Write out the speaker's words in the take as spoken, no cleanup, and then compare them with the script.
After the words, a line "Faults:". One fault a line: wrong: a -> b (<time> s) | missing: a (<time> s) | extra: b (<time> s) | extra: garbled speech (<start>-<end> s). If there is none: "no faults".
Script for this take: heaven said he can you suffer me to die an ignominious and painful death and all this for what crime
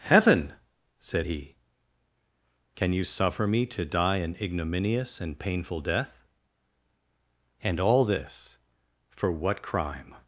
heaven said he can you suffer me to die an ignominious and painful death and all this for what crime
Faults:
no faults